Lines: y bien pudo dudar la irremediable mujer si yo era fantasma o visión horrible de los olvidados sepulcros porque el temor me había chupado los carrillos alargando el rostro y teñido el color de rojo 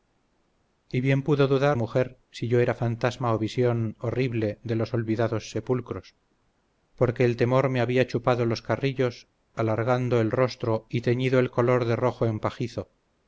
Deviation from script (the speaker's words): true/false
true